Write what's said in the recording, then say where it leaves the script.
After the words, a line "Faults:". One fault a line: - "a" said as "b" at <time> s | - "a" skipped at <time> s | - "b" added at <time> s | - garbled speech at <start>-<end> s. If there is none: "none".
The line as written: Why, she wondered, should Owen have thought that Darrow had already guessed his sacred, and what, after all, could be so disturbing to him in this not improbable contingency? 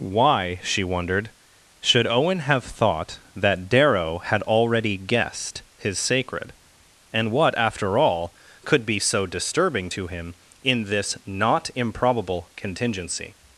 Why, she wondered, should Owen have thought that Darrow had already guessed his sacred, and what, after all, could be so disturbing to him in this not improbable contingency?
Faults:
none